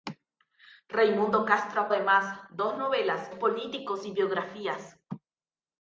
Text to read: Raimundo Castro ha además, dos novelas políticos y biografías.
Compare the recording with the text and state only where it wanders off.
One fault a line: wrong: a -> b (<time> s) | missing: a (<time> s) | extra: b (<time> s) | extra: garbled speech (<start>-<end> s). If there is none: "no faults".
no faults